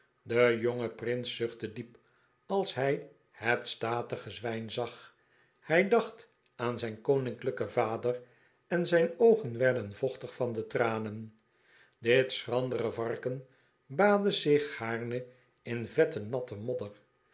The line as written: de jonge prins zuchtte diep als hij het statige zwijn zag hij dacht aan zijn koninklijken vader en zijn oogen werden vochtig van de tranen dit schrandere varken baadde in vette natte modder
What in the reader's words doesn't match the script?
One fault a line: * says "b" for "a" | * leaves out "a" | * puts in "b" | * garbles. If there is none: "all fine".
* puts in "zich gaarne"